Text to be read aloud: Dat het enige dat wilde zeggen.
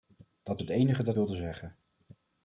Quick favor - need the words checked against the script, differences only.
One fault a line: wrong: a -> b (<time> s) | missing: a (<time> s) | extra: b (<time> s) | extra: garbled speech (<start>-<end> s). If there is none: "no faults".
no faults